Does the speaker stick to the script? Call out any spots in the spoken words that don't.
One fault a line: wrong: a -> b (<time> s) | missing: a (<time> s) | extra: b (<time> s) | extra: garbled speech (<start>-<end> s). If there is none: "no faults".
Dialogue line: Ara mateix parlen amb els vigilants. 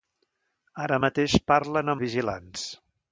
missing: amb els (2.0 s)